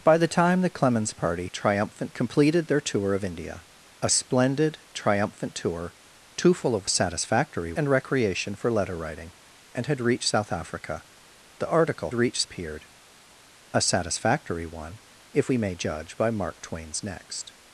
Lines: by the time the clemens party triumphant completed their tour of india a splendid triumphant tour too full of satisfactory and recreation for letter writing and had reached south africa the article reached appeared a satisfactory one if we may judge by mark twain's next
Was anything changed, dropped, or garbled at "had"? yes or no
no